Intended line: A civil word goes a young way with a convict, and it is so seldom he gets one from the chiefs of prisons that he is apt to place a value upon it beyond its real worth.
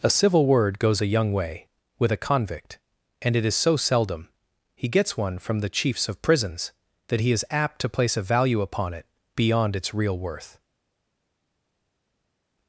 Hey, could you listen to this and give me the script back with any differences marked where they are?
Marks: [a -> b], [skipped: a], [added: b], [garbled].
A civil word goes a young way with a convict, and it is so seldom he gets one from the chiefs of prisons that he is apt to place a value upon it beyond its real worth.